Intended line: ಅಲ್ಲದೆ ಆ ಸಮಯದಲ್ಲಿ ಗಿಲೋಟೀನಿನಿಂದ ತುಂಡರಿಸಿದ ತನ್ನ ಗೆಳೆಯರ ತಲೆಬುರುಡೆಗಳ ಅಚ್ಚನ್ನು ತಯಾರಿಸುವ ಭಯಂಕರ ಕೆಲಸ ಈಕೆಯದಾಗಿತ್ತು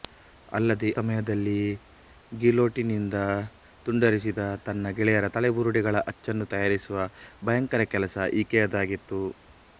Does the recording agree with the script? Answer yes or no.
no